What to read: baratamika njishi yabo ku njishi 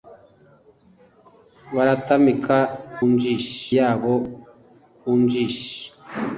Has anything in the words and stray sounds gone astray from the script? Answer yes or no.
no